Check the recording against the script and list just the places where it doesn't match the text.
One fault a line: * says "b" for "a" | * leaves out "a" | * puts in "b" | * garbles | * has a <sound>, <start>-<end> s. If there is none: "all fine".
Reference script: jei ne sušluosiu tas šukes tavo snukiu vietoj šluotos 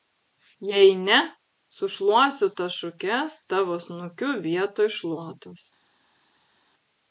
all fine